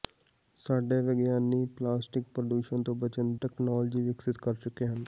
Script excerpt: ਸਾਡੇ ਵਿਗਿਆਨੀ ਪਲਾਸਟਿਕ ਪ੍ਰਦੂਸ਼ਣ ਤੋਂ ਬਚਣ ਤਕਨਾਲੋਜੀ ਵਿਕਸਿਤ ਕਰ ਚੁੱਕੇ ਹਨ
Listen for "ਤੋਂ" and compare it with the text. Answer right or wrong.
right